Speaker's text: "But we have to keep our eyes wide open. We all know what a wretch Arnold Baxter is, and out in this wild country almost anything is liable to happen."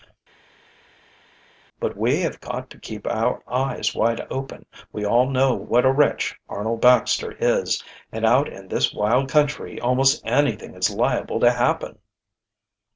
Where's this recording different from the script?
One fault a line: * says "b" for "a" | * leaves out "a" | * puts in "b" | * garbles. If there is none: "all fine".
* puts in "got"